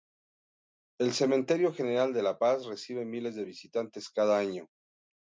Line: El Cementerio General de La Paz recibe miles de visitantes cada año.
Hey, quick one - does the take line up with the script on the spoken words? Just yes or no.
yes